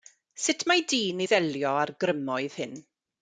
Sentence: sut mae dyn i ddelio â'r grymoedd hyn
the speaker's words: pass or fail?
pass